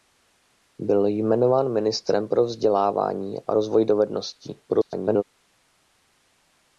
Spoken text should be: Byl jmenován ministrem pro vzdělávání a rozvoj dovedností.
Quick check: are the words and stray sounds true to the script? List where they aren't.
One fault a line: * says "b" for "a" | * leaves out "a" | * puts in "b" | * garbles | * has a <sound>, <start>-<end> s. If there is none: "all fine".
* garbles